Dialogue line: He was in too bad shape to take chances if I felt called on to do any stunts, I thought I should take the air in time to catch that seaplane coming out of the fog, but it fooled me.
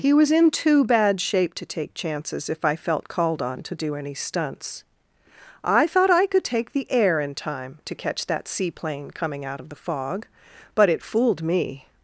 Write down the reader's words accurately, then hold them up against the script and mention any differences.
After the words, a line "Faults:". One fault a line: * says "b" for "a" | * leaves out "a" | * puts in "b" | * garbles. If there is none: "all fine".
He was in too bad shape to take chances if I felt called on to do any stunts, I thought I could take the air in time to catch that seaplane coming out of the fog, but it fooled me.
Faults:
* says "could" for "should"